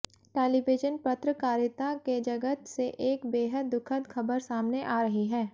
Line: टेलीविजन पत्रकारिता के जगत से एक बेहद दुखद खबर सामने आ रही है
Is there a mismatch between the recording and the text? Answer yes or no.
no